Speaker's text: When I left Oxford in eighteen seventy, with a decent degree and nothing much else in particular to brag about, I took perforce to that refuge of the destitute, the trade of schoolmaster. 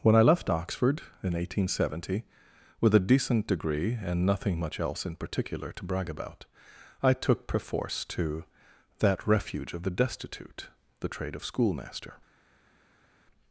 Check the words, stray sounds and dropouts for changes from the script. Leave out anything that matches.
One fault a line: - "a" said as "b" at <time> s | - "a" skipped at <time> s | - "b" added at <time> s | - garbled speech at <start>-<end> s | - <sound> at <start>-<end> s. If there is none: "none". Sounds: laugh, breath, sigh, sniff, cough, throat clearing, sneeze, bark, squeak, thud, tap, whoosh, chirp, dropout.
none